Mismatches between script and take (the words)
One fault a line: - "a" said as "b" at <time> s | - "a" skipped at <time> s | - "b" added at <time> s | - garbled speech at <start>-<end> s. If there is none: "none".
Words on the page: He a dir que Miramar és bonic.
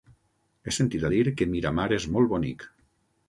- "sentit" added at 0.8 s
- "molt" added at 2.2 s